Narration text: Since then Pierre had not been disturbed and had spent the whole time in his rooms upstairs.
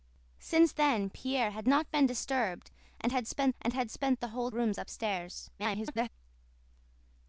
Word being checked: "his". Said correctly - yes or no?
no